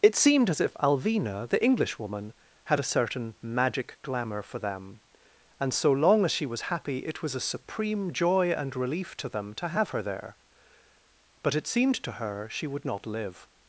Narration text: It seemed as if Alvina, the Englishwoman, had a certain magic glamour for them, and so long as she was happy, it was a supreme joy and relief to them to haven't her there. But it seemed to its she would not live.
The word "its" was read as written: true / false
false